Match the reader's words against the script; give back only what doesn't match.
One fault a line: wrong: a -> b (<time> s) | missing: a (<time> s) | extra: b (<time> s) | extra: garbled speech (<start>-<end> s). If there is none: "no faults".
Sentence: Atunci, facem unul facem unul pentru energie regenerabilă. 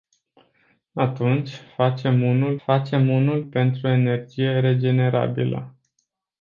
no faults